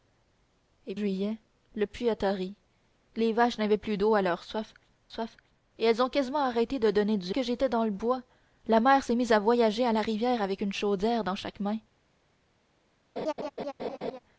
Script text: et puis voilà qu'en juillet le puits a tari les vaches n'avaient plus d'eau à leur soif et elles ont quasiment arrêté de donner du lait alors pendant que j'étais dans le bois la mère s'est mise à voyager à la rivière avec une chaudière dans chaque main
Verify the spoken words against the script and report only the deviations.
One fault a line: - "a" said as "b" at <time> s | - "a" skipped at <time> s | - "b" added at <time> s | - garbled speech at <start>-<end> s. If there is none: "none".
- "puis voilà qu'en" skipped at 0.9 s
- "soif" added at 5.1 s
- "lait alors pendant" skipped at 7.3 s